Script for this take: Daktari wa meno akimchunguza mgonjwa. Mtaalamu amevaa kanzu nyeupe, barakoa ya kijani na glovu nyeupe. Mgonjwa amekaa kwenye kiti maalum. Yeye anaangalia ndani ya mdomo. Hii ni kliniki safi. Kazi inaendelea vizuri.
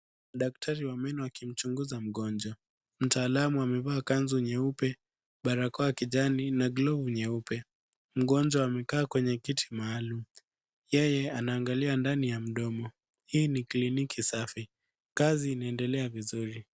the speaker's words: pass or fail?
pass